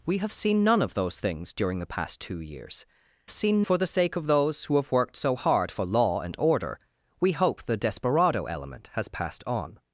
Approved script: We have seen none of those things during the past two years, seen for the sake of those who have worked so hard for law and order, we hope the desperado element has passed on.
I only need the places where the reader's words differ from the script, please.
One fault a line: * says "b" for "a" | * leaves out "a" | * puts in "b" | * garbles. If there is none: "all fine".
all fine